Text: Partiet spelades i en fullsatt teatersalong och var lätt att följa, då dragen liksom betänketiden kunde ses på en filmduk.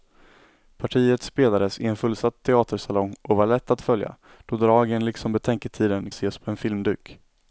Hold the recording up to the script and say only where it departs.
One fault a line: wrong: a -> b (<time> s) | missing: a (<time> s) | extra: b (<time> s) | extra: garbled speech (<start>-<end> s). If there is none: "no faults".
missing: kunde (6.1 s)